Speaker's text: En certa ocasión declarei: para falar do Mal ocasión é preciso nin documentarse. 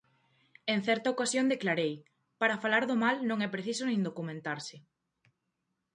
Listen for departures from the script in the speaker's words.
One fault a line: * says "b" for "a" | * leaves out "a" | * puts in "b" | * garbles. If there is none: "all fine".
* says "non" for "ocasión"